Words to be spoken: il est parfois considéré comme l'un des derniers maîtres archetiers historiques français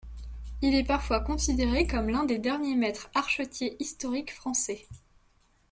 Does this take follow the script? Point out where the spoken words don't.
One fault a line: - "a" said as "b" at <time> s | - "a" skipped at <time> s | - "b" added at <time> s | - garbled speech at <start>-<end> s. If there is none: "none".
none